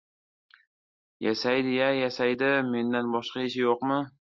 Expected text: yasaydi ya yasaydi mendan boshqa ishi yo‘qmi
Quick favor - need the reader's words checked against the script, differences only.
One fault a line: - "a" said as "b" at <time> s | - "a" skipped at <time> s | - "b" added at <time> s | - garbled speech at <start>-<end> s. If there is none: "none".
none